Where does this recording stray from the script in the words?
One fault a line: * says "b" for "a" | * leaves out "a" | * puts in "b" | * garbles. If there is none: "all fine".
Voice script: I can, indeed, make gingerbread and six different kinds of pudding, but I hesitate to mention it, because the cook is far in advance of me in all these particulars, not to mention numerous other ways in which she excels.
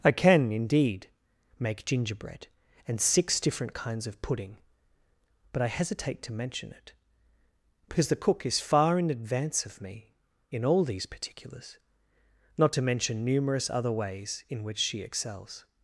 all fine